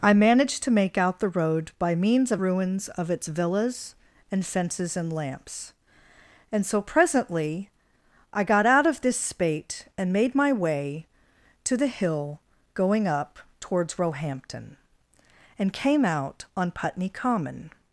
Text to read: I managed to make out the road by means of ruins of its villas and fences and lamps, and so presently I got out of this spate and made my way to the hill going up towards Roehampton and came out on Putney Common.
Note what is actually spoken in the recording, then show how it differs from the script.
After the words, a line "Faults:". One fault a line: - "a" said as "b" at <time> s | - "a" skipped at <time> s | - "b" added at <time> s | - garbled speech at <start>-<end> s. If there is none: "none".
I managed to make out the road by means of ruins of its villas and fences and lamps, and so presently I got out of this spate and made my way to the hill going up towards Roehampton and came out on Putney Common.
Faults:
none